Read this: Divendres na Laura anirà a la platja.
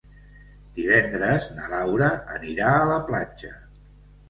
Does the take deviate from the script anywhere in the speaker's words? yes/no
no